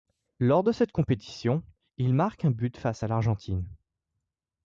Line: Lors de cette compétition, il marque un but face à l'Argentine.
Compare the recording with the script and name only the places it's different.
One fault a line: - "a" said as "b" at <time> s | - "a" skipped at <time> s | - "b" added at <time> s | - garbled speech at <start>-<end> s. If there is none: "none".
none